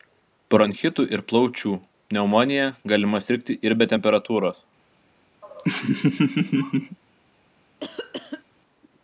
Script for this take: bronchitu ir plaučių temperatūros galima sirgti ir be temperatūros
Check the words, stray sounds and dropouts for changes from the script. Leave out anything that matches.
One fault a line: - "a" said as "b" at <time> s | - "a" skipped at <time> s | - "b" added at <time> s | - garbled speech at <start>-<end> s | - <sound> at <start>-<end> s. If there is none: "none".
- "temperatūros" said as "pneumonija" at 2.1 s
- laugh at 5.4-7.0 s
- cough at 7.8-8.4 s